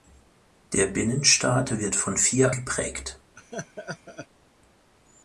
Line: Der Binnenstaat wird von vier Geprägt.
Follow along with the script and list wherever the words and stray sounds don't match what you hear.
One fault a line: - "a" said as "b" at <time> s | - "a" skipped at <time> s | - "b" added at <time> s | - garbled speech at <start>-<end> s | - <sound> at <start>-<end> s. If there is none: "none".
- laugh at 3.4-4.3 s